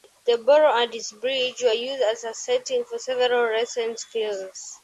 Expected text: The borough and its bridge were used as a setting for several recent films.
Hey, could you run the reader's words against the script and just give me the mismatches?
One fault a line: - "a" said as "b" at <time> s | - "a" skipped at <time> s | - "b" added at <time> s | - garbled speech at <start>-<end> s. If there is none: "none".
none